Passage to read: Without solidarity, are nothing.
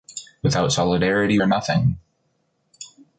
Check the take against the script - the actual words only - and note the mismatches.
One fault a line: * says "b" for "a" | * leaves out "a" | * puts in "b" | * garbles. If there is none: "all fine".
all fine